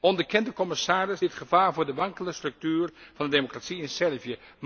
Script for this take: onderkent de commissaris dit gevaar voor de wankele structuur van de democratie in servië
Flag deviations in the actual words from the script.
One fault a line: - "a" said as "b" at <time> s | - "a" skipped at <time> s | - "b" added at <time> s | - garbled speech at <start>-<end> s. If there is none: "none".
none